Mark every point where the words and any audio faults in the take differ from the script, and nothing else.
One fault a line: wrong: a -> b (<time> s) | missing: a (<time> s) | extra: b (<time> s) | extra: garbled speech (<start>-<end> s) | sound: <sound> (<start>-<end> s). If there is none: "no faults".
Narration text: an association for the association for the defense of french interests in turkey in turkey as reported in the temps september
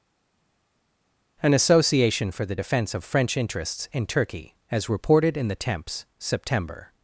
missing: association for the (2.6 s)
missing: in turkey (4.5 s)